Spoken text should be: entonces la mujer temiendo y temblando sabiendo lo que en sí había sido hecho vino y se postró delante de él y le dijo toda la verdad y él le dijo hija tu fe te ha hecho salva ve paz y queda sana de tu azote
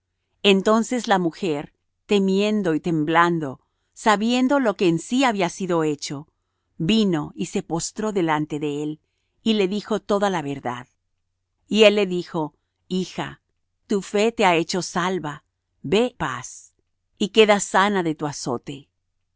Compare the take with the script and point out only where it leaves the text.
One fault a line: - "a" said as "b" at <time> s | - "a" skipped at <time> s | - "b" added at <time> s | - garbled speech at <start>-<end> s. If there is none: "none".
none